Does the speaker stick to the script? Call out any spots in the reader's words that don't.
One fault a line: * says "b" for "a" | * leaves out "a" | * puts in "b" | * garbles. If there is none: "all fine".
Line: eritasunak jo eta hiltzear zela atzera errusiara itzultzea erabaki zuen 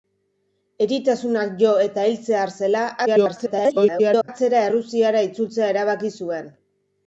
* garbles